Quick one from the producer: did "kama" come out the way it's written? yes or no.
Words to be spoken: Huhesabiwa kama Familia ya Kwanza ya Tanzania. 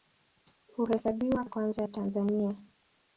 no